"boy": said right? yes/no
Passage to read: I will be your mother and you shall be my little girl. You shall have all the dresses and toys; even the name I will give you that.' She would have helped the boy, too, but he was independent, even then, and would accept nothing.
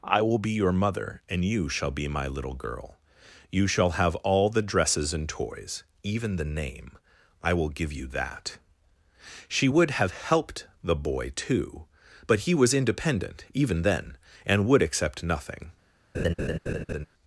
yes